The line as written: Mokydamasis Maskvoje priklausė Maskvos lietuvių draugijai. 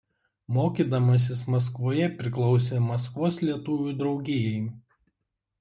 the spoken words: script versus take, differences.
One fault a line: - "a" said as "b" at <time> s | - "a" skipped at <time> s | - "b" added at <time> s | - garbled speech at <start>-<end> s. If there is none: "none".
none